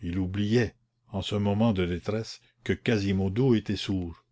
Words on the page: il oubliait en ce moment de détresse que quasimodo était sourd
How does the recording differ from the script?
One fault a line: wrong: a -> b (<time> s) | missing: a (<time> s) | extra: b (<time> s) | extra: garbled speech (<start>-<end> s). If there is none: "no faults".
no faults